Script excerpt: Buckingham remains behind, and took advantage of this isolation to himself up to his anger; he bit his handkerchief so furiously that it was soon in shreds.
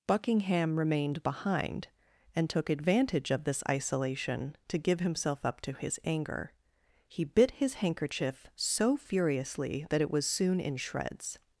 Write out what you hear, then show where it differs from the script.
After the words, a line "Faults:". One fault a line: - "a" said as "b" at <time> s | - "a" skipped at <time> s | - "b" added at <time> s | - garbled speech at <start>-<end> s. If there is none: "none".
Buckingham remained behind, and took advantage of this isolation to give himself up to his anger; he bit his handkerchief so furiously that it was soon in shreds.
Faults:
- "remains" said as "remained" at 0.8 s
- "give" added at 4.8 s